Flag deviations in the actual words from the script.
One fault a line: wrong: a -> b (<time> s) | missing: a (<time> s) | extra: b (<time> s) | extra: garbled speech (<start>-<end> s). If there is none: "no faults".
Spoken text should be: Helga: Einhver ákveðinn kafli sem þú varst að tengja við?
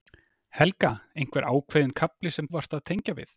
missing: þú (2.5 s)